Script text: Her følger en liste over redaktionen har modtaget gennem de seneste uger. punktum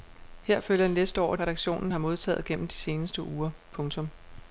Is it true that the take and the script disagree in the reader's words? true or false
false